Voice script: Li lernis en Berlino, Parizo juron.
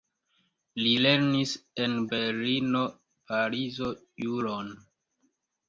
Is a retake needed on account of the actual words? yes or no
no